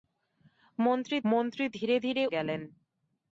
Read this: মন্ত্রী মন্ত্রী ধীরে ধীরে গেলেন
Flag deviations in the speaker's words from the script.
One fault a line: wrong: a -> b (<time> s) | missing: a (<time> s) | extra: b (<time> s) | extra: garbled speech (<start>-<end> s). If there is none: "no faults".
no faults